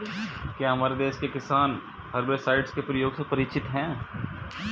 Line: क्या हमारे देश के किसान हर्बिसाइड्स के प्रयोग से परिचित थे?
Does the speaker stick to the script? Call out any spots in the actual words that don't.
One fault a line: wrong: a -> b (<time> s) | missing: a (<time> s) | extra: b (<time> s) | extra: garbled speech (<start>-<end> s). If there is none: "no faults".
wrong: थे -> हैं (3.6 s)